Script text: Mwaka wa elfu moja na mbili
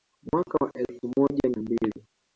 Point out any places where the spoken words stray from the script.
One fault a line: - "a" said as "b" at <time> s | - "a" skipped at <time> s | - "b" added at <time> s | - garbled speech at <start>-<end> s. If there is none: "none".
none